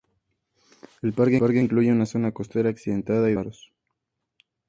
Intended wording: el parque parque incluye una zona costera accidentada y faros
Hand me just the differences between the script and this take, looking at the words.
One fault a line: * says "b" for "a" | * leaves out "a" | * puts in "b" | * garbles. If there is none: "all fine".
all fine